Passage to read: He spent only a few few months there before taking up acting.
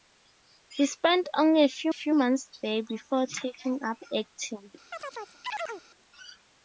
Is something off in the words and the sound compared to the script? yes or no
yes